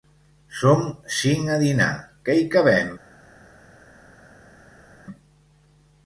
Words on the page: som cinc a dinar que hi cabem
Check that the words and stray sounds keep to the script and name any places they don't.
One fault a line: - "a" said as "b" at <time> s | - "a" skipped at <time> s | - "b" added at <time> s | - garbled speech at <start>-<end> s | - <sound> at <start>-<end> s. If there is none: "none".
none